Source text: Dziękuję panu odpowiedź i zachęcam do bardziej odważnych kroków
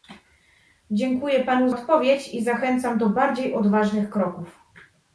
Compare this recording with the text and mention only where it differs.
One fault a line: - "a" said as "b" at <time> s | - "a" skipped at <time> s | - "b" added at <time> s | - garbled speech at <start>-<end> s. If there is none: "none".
none